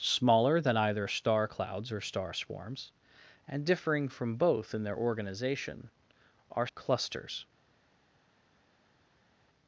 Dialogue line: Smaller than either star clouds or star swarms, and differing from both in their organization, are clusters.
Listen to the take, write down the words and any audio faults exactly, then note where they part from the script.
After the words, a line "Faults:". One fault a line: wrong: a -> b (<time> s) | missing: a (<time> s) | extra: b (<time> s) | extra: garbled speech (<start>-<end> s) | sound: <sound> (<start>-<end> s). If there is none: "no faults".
Smaller than either star clouds or star swarms, and differing from both in their organization, are clusters.
Faults:
no faults